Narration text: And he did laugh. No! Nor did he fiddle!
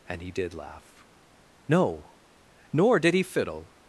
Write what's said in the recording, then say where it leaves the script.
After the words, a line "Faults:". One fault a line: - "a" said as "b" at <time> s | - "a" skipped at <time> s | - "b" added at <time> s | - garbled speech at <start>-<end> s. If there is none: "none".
And he did laugh. No! Nor did he fiddle!
Faults:
none